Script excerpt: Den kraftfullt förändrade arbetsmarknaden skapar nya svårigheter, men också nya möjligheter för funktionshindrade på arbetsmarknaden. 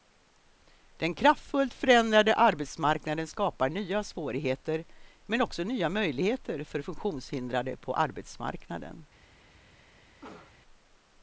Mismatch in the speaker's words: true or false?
false